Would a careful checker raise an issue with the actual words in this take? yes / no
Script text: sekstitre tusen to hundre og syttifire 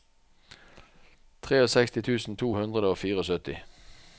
no